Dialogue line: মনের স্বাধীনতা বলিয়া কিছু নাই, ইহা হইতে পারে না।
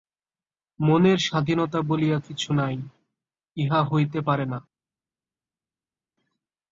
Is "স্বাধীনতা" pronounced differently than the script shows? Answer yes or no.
no